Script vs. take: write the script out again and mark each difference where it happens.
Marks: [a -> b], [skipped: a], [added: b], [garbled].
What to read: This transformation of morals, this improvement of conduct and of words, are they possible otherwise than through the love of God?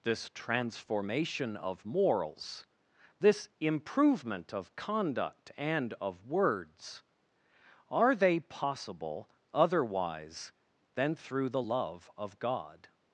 This transformation of morals, this improvement of conduct and of words, are they possible otherwise than through the love of God?